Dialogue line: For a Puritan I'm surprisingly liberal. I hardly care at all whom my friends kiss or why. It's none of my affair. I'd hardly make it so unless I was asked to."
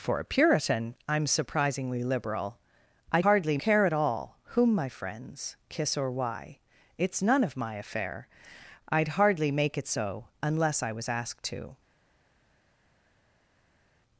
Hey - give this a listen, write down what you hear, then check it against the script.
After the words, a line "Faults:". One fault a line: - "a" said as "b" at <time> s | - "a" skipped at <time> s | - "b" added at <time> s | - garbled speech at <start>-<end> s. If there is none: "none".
For a Puritan I'm surprisingly liberal. I hardly care at all whom my friends kiss or why. It's none of my affair. I'd hardly make it so unless I was asked to."
Faults:
none